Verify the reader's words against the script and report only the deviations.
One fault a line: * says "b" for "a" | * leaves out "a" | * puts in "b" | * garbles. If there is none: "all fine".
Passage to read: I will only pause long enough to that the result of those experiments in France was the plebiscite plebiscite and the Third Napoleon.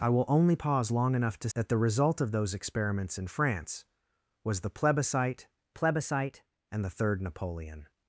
all fine